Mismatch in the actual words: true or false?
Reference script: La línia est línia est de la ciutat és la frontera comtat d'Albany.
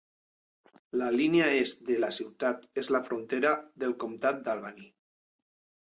true